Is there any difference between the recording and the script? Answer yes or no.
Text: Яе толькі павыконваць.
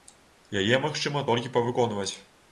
yes